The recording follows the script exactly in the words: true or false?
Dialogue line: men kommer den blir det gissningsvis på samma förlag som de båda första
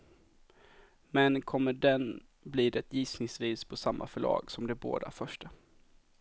true